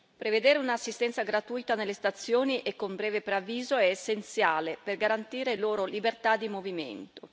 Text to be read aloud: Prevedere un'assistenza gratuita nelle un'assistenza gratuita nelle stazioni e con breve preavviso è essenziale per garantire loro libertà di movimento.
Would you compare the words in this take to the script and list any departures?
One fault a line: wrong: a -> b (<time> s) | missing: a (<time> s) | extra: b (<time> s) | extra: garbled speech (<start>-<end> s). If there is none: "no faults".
missing: un'assistenza gratuita nelle (1.9 s)